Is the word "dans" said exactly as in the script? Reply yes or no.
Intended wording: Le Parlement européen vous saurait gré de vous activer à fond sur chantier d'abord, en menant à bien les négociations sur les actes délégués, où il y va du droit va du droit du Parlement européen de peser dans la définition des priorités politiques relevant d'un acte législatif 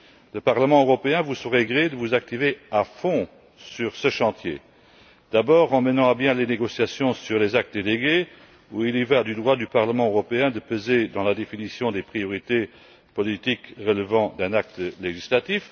yes